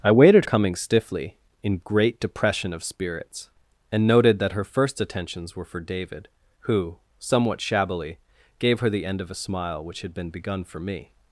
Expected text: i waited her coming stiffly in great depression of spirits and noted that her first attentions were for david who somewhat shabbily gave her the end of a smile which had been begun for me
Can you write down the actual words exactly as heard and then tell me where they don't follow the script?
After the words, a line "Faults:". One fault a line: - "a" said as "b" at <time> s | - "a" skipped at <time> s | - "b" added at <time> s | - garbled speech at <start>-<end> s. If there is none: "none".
i waited coming stiffly in great depression of spirits and noted that her first attentions were for david who somewhat shabbily gave her the end of a smile which had been begun for me
Faults:
- "her" skipped at 0.5 s